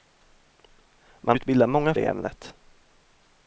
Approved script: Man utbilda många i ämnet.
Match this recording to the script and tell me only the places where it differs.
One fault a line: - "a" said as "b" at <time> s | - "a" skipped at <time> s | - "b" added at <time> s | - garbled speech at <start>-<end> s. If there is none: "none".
none